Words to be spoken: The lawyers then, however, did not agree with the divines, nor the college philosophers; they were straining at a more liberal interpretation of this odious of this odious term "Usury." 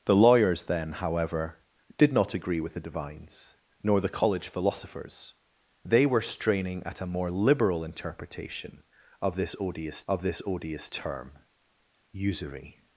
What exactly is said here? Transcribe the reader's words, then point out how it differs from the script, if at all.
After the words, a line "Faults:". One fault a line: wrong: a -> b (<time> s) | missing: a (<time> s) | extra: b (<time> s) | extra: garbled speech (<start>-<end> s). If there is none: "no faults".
The lawyers then, however, did not agree with the divines, nor the college philosophers; they were straining at a more liberal interpretation of this odious of this odious term "Usury."
Faults:
no faults